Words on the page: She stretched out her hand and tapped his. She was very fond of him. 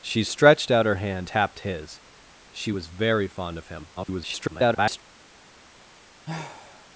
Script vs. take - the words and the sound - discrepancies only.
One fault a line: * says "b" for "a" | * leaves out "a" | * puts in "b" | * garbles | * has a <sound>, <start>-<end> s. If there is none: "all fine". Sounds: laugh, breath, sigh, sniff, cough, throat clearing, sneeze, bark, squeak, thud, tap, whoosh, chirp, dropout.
* leaves out "and"
* garbles
* has a sigh, 6.3-6.9 s